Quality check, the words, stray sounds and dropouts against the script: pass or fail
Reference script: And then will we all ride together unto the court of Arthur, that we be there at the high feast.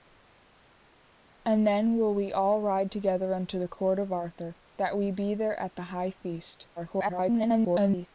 fail